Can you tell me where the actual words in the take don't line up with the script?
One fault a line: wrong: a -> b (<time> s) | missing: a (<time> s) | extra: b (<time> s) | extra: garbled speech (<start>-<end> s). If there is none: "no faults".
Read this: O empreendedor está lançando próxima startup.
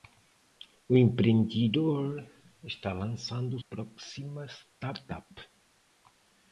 no faults